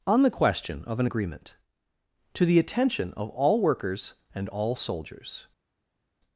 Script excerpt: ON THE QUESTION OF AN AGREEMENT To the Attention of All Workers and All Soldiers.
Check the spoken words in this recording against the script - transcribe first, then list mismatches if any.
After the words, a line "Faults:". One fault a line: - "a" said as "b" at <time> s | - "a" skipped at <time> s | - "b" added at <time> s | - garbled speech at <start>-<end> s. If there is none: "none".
ON THE QUESTION OF AN AGREEMENT To the Attention of All Workers and All Soldiers.
Faults:
none